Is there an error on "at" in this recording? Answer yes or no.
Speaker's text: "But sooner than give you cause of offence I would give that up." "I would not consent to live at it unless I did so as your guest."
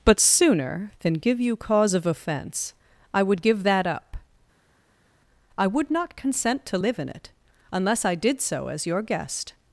yes